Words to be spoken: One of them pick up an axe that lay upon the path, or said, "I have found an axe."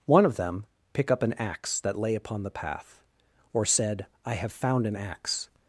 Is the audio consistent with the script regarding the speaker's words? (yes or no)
yes